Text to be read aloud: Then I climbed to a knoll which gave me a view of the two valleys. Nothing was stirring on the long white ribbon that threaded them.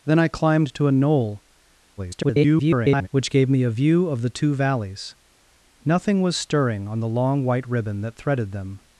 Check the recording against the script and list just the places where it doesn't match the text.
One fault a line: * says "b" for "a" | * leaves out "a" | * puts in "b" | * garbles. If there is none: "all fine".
* garbles